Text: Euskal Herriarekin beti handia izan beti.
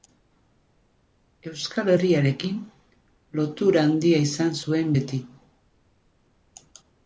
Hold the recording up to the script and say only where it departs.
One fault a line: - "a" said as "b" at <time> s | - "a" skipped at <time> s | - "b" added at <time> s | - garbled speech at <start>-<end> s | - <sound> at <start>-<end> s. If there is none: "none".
- "beti" said as "lotura" at 3.4 s
- "zuen" added at 4.6 s